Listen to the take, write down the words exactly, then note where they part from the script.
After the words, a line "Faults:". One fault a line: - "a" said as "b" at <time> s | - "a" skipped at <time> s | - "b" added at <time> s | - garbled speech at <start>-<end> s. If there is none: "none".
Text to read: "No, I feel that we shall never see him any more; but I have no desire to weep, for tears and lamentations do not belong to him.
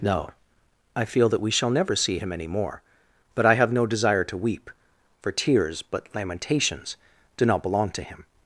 "No, I feel that we shall never see him any more; but I have no desire to weep, for tears but lamentations do not belong to him.
Faults:
- "and" said as "but" at 5.8 s